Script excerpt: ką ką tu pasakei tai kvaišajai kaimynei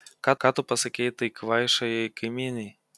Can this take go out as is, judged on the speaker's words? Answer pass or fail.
pass